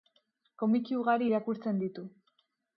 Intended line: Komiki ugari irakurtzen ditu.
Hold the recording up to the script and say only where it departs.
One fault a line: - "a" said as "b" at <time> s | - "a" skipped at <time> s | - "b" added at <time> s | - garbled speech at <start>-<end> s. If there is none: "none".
none